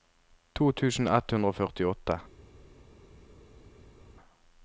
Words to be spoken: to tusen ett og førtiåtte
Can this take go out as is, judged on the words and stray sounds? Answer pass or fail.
fail